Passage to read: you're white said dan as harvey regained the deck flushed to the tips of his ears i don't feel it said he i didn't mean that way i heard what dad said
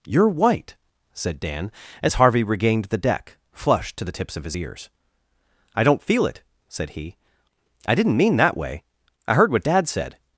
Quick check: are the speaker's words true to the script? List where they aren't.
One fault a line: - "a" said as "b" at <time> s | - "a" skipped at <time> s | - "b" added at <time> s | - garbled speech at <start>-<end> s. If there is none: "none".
none